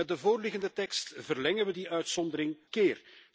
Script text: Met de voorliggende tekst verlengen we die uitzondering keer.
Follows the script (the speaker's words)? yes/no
yes